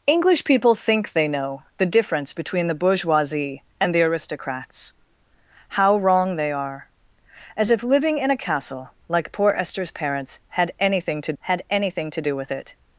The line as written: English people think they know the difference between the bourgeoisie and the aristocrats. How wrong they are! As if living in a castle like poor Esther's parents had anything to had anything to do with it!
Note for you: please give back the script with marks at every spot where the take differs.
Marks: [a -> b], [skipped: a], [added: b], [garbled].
English people think they know the difference between the bourgeoisie and the aristocrats. How wrong they are! As if living in a castle like poor Esther's parents had anything to had anything to do with it!